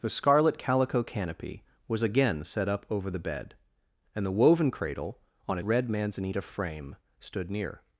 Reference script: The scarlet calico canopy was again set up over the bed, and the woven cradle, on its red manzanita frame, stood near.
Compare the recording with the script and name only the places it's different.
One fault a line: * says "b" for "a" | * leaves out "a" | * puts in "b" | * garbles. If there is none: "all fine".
* leaves out "its"